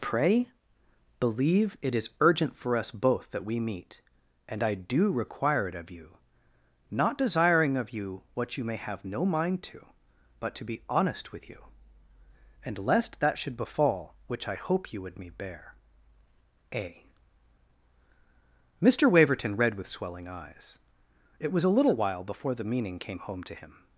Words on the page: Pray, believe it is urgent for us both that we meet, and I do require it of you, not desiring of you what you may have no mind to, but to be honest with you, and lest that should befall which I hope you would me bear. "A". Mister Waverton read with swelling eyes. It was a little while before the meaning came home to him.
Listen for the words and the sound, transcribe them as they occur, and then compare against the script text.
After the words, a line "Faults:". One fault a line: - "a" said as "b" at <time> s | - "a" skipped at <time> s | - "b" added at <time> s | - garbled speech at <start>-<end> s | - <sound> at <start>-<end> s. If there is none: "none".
Pray, believe it is urgent for us both that we meet, and I do require it of you, not desiring of you what you may have no mind to, but to be honest with you, and lest that should befall which I hope you would me bear. "A". Mister Waverton read with swelling eyes. It was a little while before the meaning came home to him.
Faults:
none